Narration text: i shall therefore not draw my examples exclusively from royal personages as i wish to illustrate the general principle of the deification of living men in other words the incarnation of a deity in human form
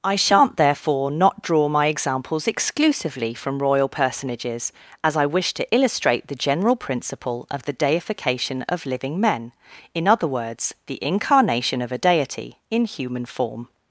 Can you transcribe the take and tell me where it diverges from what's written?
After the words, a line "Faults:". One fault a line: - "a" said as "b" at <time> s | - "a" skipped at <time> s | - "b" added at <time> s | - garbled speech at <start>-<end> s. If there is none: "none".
i shan't therefore not draw my examples exclusively from royal personages as i wish to illustrate the general principle of the deification of living men in other words the incarnation of a deity in human form
Faults:
- "shall" said as "shan't" at 0.1 s